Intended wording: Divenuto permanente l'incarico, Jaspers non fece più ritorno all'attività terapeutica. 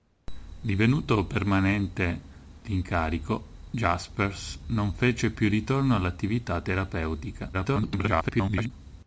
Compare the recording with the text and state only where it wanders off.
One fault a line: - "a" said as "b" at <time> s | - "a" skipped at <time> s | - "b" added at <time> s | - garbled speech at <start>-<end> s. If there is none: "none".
- garbled speech at 7.5-8.7 s